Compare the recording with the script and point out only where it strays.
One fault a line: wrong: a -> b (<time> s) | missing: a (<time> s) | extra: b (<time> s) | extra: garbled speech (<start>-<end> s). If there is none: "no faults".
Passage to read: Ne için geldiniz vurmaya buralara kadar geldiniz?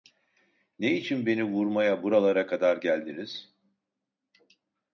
wrong: geldiniz -> beni (1.2 s)